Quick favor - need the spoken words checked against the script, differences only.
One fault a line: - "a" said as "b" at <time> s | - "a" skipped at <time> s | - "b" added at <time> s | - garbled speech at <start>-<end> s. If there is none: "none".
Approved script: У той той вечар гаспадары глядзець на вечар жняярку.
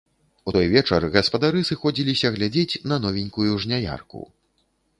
- "той" skipped at 0.7 s
- "сыходзіліся" added at 1.7 s
- "вечар" said as "новенькую" at 3.1 s